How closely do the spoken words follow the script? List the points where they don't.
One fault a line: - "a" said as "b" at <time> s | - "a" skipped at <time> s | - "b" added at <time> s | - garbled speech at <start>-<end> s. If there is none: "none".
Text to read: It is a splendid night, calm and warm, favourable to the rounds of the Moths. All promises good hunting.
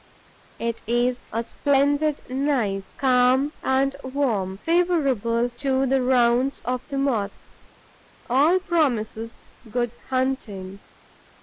none